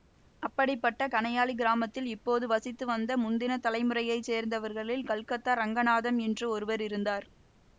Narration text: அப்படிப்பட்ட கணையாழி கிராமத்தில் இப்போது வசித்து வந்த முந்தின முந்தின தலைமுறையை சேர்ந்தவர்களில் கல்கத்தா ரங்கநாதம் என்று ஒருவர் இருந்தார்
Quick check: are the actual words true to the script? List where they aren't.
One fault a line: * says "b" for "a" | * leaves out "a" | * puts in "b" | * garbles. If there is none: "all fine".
* leaves out "முந்தின"